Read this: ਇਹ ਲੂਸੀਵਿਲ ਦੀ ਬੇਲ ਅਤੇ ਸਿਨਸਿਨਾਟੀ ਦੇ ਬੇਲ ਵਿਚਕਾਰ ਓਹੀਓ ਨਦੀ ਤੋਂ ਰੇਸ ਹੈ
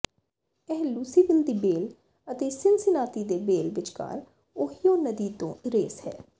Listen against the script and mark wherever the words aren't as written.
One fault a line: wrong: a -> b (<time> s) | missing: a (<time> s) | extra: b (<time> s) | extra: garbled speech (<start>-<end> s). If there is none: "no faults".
no faults